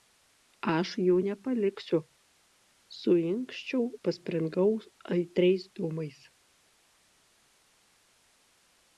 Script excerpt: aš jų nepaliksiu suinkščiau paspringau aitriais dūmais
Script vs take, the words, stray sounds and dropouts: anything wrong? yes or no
no